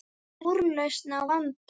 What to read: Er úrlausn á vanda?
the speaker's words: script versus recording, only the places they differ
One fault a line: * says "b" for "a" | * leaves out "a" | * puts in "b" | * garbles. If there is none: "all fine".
all fine